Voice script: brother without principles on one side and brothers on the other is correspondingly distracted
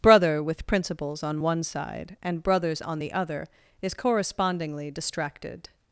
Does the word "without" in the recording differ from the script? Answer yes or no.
yes